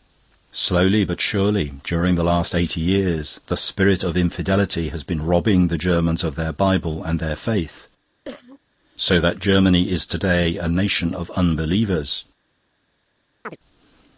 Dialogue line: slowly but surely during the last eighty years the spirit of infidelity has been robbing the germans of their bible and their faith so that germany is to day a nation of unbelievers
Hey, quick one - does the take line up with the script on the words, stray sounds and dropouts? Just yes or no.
no